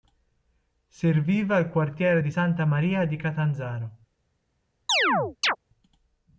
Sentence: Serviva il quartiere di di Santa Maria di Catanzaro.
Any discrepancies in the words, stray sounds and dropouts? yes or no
yes